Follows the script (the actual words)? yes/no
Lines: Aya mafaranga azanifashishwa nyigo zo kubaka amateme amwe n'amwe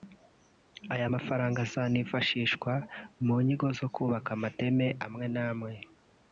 no